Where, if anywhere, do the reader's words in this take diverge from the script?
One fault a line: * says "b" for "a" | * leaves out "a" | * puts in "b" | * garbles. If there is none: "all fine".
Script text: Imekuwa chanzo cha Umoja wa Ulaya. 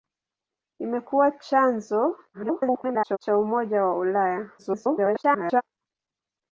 * garbles
* garbles